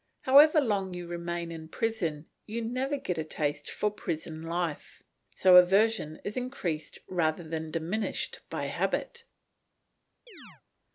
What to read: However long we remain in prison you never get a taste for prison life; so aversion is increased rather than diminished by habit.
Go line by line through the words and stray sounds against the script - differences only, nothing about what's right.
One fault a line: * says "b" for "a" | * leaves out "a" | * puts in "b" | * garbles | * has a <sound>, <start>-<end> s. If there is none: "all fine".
* says "you" for "we"
* has a chirp, 10.3-10.6 s